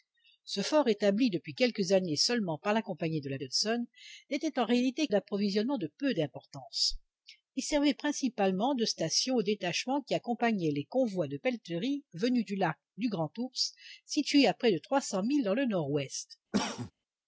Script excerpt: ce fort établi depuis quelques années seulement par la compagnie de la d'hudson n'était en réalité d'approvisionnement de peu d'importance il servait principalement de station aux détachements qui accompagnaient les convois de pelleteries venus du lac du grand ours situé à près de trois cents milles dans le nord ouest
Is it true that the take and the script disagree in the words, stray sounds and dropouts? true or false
true